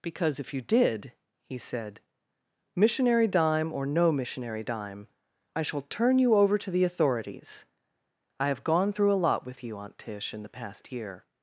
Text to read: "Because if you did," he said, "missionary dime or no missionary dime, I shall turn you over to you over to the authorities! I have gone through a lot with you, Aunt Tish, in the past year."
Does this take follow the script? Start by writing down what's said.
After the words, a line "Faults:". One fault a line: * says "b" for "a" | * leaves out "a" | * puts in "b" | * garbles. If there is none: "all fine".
"Because if you did," he said, "missionary dime or no missionary dime, I shall turn you over to the authorities! I have gone through a lot with you, Aunt Tish, in the past year."
Faults:
* leaves out "you over to"